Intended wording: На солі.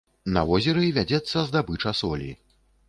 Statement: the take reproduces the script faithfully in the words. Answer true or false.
false